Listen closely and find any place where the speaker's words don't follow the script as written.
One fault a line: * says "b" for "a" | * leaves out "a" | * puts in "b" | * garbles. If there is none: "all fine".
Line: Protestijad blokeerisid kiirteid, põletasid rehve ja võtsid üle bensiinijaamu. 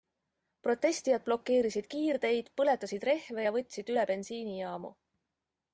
all fine